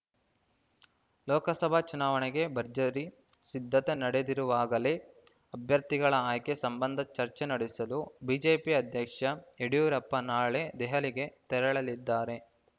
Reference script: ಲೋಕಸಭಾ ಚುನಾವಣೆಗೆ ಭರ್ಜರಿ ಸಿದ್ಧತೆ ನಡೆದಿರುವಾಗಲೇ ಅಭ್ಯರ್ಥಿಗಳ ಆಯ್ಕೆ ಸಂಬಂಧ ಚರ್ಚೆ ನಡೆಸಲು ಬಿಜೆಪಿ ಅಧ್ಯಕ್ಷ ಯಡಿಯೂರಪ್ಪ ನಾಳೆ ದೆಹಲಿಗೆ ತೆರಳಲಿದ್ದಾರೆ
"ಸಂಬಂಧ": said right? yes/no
yes